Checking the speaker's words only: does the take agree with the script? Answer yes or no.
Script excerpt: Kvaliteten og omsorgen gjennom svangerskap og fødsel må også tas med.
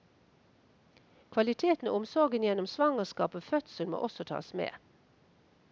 yes